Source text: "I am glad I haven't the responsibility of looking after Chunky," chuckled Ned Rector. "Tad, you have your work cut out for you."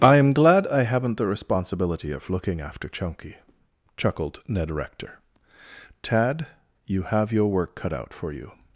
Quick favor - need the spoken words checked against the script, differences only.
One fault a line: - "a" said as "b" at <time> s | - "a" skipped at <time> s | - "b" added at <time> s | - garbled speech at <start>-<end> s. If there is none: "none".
none